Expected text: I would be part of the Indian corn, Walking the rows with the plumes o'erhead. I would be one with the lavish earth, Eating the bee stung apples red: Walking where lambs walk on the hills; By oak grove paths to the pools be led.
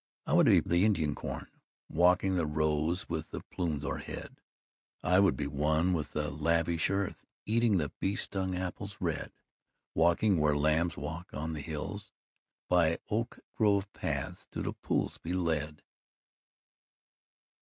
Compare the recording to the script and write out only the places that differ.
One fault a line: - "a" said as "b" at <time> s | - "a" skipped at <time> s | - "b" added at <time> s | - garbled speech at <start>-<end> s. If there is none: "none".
- "part" skipped at 0.6 s